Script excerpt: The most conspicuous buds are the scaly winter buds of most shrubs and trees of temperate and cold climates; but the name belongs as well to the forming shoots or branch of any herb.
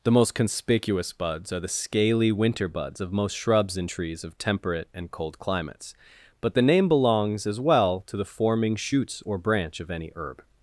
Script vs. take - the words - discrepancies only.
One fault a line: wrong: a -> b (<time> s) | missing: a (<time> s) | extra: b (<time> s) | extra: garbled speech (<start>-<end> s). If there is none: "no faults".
no faults